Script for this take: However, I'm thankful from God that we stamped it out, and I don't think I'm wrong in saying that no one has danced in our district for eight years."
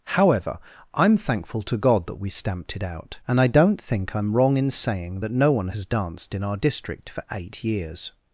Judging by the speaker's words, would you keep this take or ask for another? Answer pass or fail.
fail